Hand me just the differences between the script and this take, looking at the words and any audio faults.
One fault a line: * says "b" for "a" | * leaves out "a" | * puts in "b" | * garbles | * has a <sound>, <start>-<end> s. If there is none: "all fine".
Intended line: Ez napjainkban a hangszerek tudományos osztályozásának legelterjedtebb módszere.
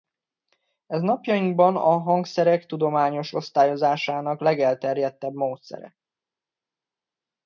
all fine